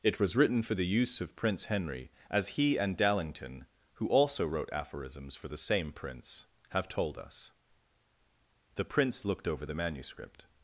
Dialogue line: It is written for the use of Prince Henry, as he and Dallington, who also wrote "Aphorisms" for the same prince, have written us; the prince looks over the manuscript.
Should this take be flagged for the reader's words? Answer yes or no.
yes